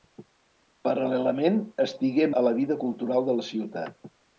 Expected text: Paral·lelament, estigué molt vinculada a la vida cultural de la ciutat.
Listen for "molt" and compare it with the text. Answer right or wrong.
wrong